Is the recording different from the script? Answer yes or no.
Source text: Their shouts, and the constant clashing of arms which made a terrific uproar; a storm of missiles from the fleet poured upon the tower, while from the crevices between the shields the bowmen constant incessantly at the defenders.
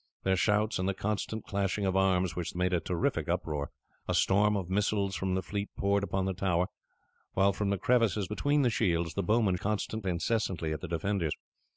no